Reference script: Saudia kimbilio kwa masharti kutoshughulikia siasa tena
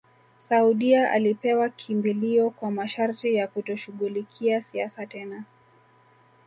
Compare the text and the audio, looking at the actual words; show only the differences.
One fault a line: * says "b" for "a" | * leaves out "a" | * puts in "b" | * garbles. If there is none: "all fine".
* puts in "alipewa"
* puts in "ya"